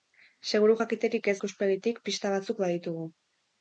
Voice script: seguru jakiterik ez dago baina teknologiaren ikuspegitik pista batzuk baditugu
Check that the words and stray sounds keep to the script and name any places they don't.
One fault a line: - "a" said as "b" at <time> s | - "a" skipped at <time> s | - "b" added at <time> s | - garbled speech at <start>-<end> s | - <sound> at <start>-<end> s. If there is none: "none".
- "dago baina teknologiaren" skipped at 1.3 s